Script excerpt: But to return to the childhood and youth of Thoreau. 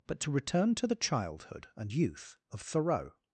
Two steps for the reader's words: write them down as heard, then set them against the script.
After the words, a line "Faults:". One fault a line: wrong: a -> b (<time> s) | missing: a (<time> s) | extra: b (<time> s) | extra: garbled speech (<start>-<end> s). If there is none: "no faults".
But to return to the childhood and youth of Thoreau.
Faults:
no faults